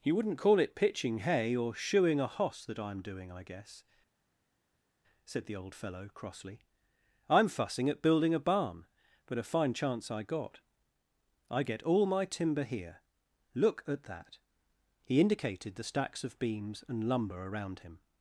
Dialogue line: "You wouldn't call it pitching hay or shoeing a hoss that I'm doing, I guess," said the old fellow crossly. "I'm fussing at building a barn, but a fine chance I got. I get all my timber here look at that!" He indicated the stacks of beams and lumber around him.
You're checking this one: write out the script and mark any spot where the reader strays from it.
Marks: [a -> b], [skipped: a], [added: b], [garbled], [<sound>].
"You wouldn't call it pitching hay or shoeing a hoss that I'm doing, I guess," said the old fellow crossly. "I'm fussing at building a barn, but a fine chance I got. I get all my timber here look at that!" He indicated the stacks of beams and lumber around him.